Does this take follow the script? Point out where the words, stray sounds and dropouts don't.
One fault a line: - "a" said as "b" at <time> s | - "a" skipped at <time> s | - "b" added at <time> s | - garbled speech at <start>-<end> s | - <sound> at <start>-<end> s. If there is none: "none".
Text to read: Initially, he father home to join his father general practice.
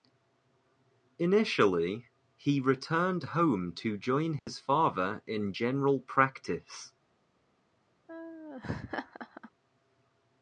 - "father" said as "returned" at 2.6 s
- dropout at 4.4-4.5 s
- "in" added at 5.3 s
- laugh at 8.1-9.5 s